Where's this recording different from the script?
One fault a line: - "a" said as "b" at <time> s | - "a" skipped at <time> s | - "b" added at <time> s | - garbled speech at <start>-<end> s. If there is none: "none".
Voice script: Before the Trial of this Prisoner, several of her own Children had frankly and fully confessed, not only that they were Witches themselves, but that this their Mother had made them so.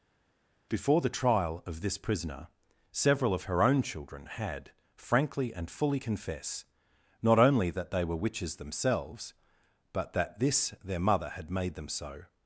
- "confessed" said as "confess" at 6.0 s